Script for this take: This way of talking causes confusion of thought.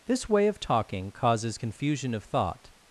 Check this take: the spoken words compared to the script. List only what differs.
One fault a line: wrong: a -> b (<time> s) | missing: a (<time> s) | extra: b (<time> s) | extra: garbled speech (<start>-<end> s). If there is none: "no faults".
no faults